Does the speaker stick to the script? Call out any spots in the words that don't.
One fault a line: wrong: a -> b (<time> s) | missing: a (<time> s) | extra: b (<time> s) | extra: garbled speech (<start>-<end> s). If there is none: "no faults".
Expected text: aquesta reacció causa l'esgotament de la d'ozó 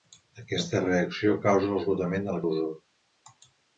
no faults